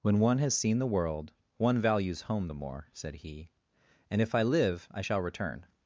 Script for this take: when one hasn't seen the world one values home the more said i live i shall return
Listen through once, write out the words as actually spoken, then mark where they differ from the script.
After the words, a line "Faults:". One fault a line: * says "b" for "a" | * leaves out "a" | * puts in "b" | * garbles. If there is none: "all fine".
when one has seen the world one values home the more said he and if i live i shall return
Faults:
* says "has" for "hasn't"
* puts in "he and if"